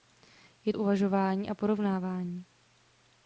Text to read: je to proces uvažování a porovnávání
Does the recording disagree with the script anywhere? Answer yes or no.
yes